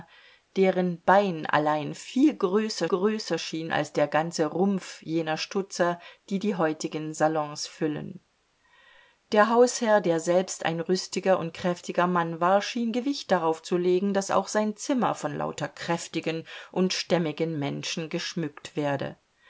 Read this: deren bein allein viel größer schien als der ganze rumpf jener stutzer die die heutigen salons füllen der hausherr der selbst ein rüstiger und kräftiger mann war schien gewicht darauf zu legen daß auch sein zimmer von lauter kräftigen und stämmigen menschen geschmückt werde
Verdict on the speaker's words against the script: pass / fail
fail